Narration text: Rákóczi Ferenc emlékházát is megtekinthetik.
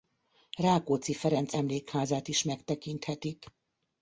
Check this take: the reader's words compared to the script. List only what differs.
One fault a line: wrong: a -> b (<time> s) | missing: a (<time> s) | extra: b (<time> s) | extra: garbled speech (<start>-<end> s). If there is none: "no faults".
no faults